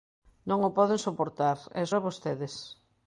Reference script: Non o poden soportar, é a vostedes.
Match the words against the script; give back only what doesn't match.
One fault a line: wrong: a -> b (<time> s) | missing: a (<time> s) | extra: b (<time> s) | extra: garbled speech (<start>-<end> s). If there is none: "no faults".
no faults